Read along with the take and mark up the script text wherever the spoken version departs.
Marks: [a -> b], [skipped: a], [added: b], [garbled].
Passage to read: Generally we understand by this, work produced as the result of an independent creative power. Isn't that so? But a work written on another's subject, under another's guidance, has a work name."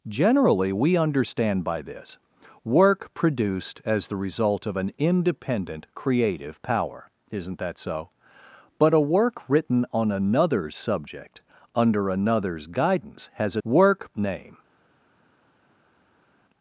Generally we understand by this, work produced as the result of an independent creative power. Isn't that so? But a work written on another's subject, under another's guidance, has a work name."